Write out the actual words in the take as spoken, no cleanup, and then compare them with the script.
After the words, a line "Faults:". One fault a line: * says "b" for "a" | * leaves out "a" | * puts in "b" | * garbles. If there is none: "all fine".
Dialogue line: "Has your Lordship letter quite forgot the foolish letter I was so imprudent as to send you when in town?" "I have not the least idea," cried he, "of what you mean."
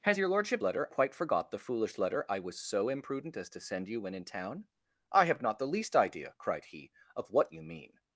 "Has your Lordship letter quite forgot the foolish letter I was so imprudent as to send you when in town?" "I have not the least idea," cried he, "of what you mean."
Faults:
all fine